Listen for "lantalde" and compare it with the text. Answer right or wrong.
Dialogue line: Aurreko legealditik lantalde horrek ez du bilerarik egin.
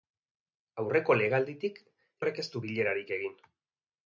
wrong